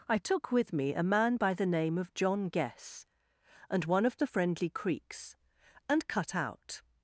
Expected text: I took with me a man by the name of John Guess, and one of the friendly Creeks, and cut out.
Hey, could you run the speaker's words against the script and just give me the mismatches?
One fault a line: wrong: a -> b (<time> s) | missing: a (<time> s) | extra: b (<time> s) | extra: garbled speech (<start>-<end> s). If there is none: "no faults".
no faults